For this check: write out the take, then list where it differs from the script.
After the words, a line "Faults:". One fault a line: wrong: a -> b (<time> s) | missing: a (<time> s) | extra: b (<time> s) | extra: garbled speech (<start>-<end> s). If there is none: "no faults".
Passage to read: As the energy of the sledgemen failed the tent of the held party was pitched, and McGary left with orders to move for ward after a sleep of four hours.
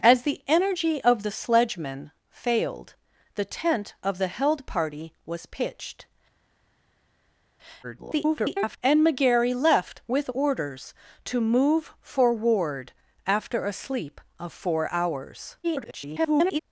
As the energy of the sledgemen failed the tent of the held party was pitched, [garbled] and McGary left with orders to move for ward after a sleep of four hours. [garbled]
Faults:
extra: garbled speech (7.8-8.8 s)
extra: garbled speech (15.6-16.6 s)